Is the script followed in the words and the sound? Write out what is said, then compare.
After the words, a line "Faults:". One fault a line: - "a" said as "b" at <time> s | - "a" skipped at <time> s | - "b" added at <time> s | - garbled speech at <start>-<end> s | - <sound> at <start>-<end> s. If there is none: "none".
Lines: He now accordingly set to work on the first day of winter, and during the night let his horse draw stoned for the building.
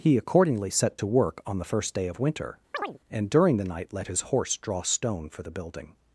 He accordingly set to work on the first day of winter, and during the night let his horse draw stone for the building.
Faults:
- "now" skipped at 0.2 s
- chirp at 2.7-3.0 s
- "stoned" said as "stone" at 4.8 s